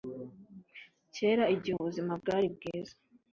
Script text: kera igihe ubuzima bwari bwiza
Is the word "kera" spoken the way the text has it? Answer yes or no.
yes